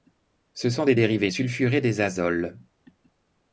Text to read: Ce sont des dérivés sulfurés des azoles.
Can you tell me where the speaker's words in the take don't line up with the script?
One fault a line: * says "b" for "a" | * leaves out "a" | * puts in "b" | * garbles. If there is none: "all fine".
all fine